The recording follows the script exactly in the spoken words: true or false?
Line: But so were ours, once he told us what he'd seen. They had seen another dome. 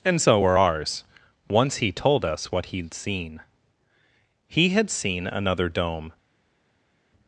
false